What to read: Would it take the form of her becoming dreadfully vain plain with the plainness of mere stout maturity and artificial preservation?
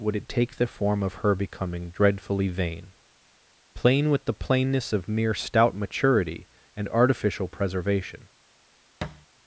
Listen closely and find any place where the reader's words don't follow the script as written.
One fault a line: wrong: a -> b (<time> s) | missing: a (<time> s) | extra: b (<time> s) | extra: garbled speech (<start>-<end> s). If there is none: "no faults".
no faults